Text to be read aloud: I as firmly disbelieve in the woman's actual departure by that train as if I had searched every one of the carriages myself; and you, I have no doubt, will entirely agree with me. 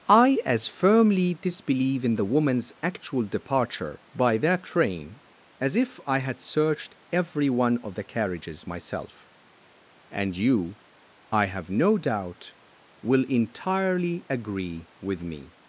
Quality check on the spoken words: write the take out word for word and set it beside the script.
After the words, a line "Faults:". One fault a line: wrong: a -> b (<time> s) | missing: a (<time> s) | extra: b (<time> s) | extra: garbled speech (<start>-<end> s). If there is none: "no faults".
I as firmly disbelieve in the woman's actual departure by that train as if I had searched every one of the carriages myself; and you, I have no doubt, will entirely agree with me.
Faults:
no faults